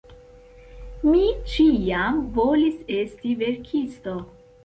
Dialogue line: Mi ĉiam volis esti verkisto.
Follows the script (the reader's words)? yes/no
yes